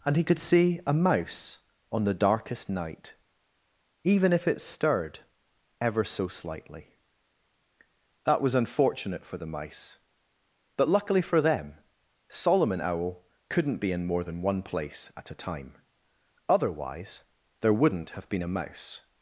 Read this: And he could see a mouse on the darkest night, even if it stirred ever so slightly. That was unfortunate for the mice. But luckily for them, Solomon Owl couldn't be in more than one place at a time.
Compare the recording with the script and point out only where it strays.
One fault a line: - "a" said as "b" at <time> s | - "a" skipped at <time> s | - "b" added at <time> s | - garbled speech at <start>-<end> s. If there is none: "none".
- "Otherwise there wouldn't have been a mouse" added at 16.5 s